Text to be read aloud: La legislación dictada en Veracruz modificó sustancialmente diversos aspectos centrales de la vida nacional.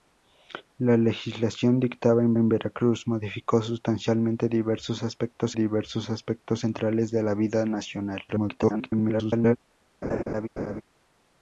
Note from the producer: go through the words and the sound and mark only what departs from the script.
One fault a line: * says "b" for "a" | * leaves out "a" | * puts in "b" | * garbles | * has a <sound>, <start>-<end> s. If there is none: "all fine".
* puts in "en"
* puts in "diversos aspectos"
* garbles
* has a laugh, 10.0-10.8 s